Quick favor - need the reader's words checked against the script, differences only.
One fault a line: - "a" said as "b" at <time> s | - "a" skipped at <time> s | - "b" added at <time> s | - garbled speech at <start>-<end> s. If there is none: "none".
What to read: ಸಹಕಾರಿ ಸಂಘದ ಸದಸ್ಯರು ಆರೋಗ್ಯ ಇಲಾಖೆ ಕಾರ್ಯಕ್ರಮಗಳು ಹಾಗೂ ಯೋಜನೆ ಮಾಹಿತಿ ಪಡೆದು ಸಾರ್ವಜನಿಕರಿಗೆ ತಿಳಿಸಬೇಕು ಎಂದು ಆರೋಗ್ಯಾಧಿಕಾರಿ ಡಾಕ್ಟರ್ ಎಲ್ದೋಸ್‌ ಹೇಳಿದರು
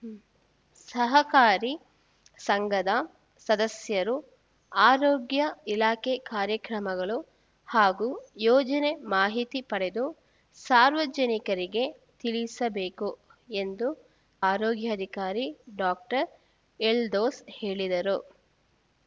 none